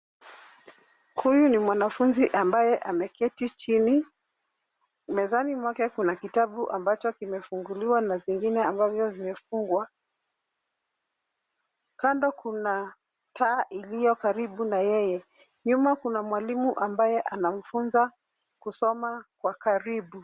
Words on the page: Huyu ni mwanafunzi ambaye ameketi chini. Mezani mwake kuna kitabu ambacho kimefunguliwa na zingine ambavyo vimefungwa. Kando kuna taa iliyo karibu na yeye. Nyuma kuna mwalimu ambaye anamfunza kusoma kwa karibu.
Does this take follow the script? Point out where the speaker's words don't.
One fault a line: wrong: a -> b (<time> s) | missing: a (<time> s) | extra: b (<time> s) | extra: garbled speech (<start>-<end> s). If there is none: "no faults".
no faults